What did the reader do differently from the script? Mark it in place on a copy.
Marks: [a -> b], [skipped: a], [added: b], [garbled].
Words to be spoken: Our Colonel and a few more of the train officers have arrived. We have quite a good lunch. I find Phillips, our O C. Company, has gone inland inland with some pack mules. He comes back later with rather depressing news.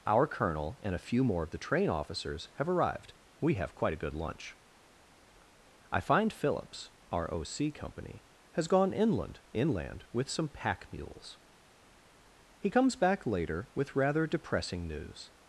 Our Colonel and a few more of the train officers have arrived. We have quite a good lunch. I find Phillips, our O C. Company, has gone inland inland with some pack mules. He comes back later with rather depressing news.